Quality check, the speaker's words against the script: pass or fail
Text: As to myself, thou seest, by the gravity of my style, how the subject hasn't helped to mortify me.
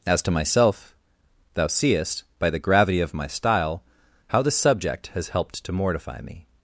fail